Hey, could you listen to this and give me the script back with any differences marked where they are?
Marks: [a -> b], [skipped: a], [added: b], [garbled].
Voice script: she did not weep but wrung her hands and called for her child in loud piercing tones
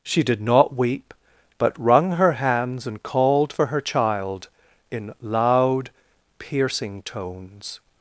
she did not weep but wrung her hands and called for her child in loud piercing tones